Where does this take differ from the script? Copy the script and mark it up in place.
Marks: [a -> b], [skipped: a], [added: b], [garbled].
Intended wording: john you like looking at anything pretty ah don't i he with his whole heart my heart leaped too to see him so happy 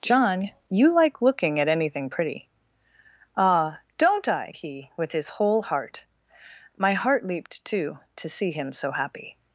john you like looking at anything pretty ah don't i he with his whole heart my heart leaped too to see him so happy